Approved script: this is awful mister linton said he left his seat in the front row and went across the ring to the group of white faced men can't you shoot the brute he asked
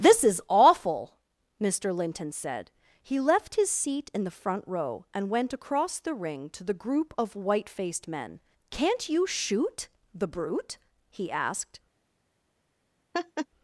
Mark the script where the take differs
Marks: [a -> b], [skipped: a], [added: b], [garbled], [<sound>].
this is awful mister linton said he left his seat in the front row and went across the ring to the group of white faced men can't you shoot the brute he asked [laugh]